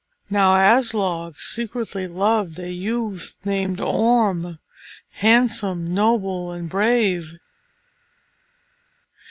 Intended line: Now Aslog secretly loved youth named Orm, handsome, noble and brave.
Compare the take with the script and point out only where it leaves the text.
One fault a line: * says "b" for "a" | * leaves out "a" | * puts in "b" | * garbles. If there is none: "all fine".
* puts in "a"